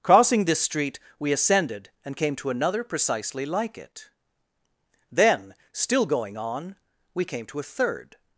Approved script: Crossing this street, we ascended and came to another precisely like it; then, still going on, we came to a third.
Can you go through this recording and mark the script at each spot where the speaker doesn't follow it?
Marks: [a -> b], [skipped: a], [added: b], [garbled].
Crossing this street, we ascended and came to another precisely like it; then, still going on, we came to a third.